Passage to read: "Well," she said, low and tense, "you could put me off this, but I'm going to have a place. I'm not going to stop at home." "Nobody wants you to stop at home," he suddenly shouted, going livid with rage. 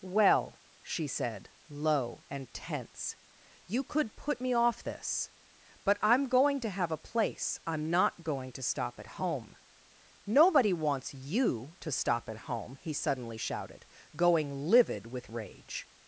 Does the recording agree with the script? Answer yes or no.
yes